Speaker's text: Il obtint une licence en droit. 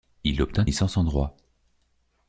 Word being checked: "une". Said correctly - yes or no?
no